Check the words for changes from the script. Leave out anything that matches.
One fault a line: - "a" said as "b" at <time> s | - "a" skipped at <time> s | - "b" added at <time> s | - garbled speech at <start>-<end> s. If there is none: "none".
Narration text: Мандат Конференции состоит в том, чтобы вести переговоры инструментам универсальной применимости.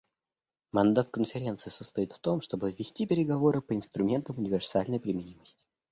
- "по" added at 3.6 s